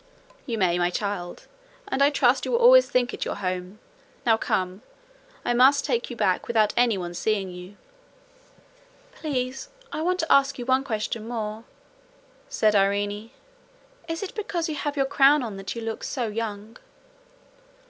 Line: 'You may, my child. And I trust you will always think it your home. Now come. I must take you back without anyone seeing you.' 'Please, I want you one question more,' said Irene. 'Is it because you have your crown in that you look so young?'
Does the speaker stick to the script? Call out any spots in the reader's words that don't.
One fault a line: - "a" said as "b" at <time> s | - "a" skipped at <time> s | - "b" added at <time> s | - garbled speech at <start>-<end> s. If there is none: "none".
- "to ask" added at 10.2 s
- "in" said as "on" at 15.4 s